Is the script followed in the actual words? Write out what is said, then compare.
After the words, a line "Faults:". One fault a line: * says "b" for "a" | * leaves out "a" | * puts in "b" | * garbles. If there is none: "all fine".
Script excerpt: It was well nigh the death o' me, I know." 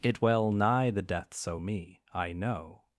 It well nigh the deaths o' me, I know."
Faults:
* leaves out "was"
* says "deaths" for "death"